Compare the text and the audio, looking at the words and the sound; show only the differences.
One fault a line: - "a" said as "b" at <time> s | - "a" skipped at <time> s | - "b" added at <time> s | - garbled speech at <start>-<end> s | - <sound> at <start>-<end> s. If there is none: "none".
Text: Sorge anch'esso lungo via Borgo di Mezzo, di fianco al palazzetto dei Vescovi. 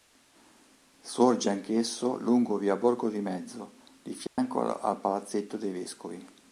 - dropout at 4.3-4.4 s